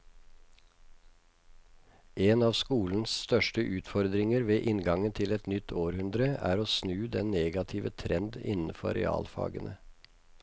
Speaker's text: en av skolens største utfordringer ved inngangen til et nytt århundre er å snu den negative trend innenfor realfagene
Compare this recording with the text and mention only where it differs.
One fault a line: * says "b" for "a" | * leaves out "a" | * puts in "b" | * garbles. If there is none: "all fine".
all fine